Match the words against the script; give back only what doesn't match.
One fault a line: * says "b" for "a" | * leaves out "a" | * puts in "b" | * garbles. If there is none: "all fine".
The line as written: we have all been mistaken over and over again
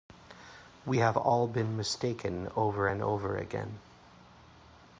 all fine